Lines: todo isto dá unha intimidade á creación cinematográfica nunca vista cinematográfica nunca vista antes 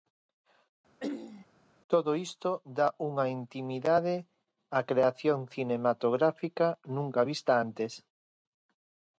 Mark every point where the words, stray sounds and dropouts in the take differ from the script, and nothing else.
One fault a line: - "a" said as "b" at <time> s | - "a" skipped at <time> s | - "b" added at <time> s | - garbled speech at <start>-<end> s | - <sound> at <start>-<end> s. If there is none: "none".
- throat clearing at 1.0-1.5 s
- "cinematográfica nunca vista" skipped at 7.5 s